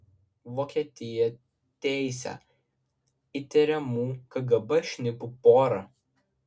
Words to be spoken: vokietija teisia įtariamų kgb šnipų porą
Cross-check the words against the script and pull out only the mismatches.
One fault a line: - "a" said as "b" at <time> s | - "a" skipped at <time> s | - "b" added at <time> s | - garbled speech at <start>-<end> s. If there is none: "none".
none